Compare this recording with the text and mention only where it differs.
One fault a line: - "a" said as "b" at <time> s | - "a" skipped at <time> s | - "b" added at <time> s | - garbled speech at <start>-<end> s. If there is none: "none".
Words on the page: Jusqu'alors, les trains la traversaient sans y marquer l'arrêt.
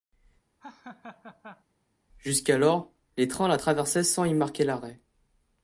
none